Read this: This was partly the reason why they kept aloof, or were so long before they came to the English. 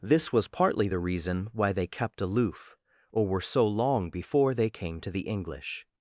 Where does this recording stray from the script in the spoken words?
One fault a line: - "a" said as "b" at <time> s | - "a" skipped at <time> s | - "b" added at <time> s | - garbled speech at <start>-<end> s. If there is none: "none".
none